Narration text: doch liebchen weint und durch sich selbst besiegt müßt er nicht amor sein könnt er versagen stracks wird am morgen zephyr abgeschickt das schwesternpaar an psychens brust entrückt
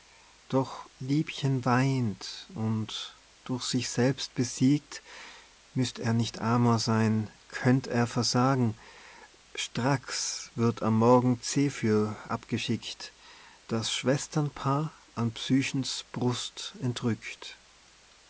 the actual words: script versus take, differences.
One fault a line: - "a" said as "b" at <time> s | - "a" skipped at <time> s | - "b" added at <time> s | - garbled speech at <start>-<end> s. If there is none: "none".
none